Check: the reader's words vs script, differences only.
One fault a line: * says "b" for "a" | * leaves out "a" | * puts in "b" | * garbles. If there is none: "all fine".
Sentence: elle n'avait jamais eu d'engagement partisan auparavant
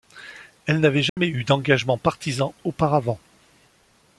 all fine